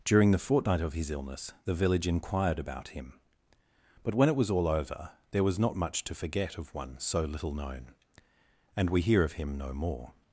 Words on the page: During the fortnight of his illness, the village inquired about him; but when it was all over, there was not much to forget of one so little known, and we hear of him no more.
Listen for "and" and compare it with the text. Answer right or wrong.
right